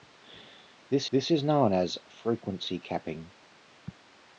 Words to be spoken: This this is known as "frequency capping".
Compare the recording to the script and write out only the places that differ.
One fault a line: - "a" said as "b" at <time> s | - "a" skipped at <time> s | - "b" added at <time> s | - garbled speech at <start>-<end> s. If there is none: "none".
none